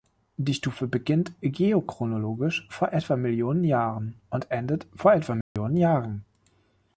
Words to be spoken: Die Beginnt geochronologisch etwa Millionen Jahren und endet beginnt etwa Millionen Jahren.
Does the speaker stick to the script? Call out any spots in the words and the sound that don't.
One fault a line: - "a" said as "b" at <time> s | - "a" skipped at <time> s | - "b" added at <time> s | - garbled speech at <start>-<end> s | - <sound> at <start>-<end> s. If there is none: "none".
- "Stufe" added at 0.6 s
- "vor" added at 2.7 s
- "beginnt" said as "vor" at 4.9 s
- dropout at 5.4-5.6 s